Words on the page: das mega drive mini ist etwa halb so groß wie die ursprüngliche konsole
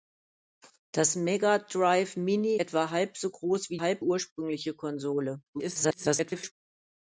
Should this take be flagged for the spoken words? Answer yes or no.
yes